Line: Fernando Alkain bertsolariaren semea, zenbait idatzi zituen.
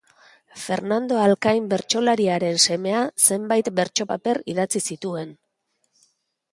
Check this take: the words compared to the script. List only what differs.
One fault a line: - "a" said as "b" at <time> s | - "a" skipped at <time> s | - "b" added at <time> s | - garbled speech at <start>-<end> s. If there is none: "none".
- "bertso paper" added at 3.8 s